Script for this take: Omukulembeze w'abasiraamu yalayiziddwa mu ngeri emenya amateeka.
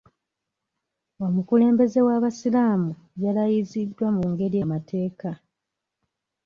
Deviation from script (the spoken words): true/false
true